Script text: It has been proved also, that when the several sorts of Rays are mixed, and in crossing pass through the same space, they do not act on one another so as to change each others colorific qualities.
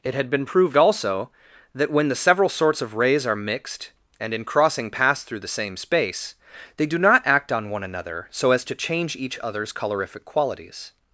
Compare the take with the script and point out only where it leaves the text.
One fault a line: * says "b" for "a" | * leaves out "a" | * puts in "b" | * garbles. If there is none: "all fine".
* says "had" for "has"